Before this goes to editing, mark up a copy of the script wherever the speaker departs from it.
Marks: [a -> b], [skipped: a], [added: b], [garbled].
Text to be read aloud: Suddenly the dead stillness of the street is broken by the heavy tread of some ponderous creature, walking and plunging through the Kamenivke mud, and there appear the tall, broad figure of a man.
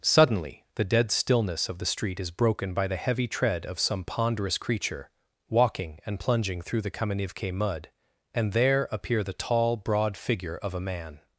Suddenly the dead stillness of the street is broken by the heavy tread of some ponderous creature, walking and plunging through the Kamenivke mud, and there appear the tall, broad figure of a man.